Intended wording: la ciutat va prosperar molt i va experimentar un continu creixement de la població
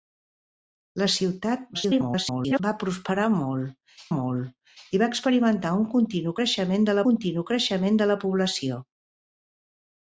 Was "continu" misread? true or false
false